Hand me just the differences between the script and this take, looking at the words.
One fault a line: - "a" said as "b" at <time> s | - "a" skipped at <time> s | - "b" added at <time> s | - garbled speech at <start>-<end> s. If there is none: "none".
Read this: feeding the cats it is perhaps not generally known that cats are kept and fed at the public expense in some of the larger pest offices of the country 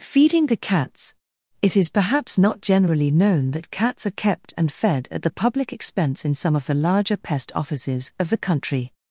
none